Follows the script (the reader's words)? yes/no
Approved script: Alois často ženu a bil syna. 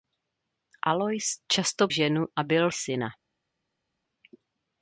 yes